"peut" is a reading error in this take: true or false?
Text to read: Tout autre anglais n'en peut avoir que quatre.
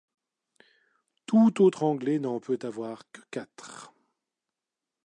false